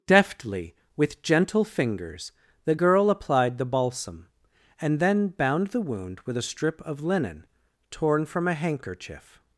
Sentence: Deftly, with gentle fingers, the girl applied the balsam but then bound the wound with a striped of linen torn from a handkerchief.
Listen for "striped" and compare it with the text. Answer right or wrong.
wrong